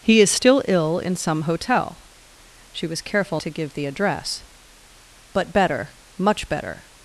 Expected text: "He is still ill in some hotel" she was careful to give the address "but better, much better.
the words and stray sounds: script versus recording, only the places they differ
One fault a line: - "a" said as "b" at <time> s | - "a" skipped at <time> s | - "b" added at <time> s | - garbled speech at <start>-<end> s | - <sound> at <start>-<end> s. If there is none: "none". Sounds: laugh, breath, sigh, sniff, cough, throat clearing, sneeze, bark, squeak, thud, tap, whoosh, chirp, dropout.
none